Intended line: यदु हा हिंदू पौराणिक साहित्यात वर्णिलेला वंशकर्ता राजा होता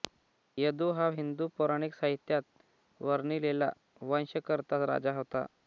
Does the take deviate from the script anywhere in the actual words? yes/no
no